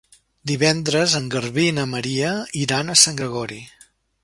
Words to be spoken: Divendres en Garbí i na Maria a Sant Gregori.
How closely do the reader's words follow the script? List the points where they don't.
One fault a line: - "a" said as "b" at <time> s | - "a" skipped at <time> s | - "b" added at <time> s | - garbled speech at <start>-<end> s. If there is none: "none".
- "iran" added at 2.6 s